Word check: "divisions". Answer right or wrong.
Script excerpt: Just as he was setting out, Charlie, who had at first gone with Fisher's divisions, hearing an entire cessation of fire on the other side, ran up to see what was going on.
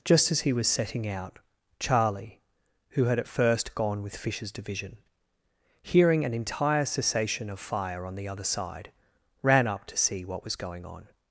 wrong